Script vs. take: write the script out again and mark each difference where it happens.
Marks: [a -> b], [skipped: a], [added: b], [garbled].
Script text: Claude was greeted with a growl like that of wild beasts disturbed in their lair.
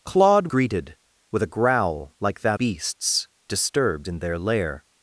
Claude [skipped: was] greeted with a growl like that [skipped: of wild] beasts disturbed in their lair.